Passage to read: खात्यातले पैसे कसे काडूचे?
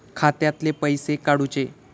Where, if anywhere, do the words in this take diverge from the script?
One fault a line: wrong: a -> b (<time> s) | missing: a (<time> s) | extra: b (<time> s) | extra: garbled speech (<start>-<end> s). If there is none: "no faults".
missing: कसे (1.1 s)